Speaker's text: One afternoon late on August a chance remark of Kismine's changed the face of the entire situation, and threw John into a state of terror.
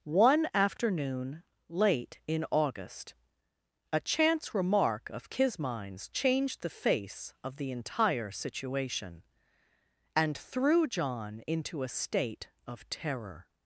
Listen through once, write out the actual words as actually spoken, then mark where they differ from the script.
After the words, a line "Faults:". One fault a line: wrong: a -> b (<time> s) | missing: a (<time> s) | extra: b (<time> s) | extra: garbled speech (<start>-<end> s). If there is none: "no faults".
One afternoon late in August a chance remark of Kismine's changed the face of the entire situation, and threw John into a state of terror.
Faults:
wrong: on -> in (2.2 s)